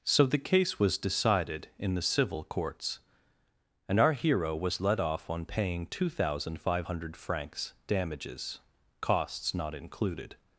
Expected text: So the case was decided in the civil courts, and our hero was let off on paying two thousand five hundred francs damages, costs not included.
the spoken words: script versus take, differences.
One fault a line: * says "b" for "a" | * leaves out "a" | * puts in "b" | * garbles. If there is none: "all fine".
all fine